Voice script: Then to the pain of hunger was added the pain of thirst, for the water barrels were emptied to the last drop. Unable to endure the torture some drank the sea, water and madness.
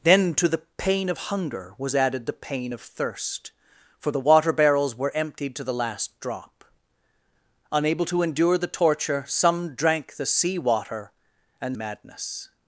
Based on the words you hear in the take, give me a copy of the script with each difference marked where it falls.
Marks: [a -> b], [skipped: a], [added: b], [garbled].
Then to the pain of hunger was added the pain of thirst, for the water barrels were emptied to the last drop. Unable to endure the torture some drank the sea, water and madness.